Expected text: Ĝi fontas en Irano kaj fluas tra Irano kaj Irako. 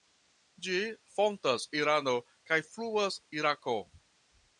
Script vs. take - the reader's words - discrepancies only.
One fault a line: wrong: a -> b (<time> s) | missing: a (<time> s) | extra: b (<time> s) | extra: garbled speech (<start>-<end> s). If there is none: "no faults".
missing: en (1.6 s)
missing: tra Irano kaj (3.2 s)